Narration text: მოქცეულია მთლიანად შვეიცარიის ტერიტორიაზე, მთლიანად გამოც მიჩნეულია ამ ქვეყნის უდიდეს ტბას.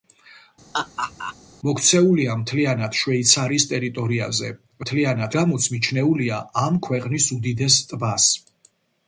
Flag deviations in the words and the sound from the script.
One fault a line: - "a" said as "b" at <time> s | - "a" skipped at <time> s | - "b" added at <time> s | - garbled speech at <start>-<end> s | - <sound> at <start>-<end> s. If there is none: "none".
- laugh at 0.7-1.4 s